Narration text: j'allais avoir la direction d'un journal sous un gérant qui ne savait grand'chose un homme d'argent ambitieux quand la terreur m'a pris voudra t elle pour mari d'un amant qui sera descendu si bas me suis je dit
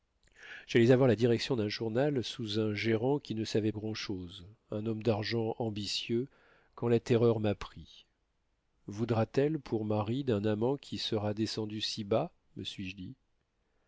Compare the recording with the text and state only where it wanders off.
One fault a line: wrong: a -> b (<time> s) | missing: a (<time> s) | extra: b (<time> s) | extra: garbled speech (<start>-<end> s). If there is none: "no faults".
no faults